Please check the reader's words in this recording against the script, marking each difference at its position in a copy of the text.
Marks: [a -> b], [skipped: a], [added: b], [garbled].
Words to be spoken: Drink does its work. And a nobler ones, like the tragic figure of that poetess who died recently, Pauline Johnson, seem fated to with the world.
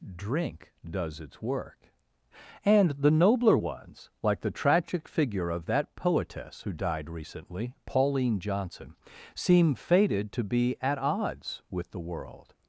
Drink does its work. And [a -> the] nobler ones, like the tragic figure of that poetess who died recently, Pauline Johnson, seem fated to [added: be at odds] with the world.